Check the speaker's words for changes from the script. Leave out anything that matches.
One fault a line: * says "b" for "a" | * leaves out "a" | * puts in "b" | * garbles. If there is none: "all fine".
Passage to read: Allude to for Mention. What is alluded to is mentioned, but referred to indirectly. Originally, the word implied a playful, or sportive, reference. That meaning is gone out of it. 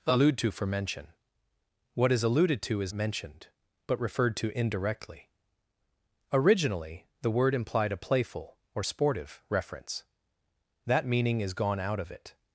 all fine